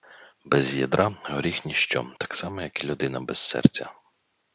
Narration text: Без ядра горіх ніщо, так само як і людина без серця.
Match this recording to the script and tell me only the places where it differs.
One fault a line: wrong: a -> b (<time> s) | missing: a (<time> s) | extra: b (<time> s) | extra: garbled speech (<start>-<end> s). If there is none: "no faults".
no faults